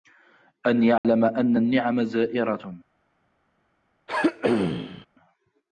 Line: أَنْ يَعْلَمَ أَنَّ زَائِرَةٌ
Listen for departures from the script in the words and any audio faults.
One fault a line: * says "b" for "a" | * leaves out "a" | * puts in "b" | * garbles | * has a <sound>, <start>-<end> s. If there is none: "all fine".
* has a dropout, 1.0-1.0 s
* puts in "النِّعَمَ"
* has a throat clearing, 4.1-5.1 s